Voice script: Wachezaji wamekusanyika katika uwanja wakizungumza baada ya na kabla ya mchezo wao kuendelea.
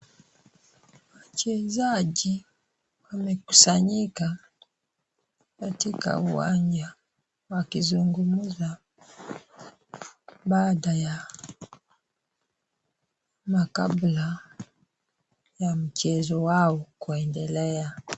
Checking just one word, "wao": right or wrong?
right